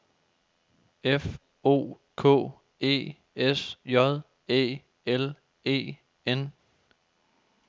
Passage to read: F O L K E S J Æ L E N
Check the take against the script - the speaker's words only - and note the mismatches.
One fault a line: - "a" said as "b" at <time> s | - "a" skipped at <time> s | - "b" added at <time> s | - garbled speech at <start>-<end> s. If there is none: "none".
- "L" skipped at 2.0 s